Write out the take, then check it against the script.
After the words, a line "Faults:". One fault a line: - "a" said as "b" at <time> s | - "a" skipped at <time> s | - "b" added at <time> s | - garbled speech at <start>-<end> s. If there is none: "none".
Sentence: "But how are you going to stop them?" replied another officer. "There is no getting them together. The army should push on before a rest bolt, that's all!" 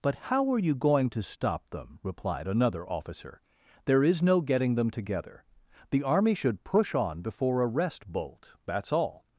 "But how are you going to stop them?" replied another officer. "There is no getting them together. The army should push on before a rest bolt, that's all!"
Faults:
none